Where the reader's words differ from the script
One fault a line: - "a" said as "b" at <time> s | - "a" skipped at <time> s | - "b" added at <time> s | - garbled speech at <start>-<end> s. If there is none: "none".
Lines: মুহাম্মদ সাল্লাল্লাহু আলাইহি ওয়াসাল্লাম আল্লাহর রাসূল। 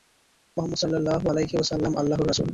none